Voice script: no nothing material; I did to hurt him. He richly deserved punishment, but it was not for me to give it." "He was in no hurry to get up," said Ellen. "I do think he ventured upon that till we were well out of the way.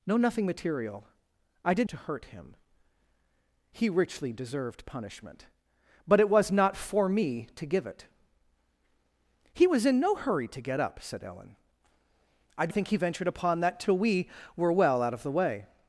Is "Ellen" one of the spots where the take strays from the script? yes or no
no